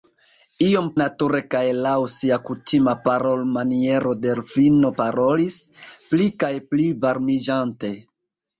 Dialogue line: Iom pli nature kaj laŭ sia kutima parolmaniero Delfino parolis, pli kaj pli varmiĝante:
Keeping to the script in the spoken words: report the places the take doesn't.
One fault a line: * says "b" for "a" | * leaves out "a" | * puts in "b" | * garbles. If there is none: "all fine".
* leaves out "pli"